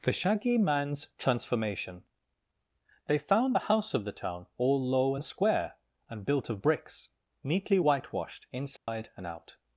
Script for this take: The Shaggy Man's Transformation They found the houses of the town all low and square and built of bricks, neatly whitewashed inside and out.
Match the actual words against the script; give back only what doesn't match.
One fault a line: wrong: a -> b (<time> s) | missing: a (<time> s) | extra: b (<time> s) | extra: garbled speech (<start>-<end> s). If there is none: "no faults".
wrong: houses -> house (3.7 s)